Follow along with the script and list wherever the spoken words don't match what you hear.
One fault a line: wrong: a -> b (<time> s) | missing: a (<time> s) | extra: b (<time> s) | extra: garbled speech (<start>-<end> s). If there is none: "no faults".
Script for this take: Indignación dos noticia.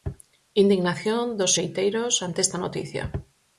extra: xeiteiros ante esta (1.5 s)